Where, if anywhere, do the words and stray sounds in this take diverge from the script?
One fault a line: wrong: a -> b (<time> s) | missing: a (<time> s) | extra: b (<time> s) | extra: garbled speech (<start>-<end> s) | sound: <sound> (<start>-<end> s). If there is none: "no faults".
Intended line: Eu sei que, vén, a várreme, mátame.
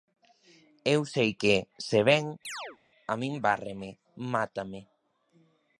extra: se (1.9 s)
sound: chirp (2.4-2.8 s)
extra: min (3.2 s)